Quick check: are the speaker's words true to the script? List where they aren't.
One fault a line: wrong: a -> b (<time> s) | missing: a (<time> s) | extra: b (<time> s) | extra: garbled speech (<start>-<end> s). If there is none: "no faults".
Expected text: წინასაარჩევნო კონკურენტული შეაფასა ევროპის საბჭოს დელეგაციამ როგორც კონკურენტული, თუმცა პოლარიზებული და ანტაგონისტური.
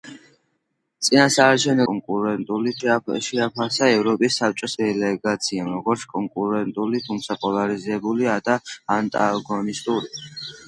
no faults